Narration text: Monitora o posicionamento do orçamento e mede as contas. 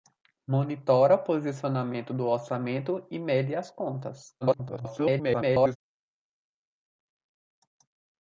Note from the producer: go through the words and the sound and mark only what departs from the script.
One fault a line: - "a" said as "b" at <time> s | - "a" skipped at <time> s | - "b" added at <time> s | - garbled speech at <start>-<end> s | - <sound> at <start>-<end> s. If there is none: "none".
- garbled speech at 4.4-5.8 s